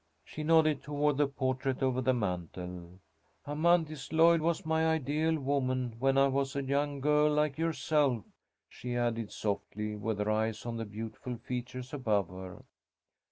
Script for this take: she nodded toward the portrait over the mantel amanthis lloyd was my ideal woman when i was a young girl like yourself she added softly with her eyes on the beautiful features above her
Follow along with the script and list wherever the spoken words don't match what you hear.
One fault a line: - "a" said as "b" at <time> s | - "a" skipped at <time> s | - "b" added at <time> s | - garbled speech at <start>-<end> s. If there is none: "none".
none